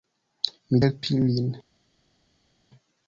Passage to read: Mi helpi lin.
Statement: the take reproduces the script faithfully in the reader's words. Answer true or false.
true